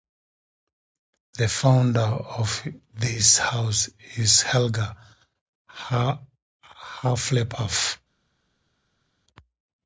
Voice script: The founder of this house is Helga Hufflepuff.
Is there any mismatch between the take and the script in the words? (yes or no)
no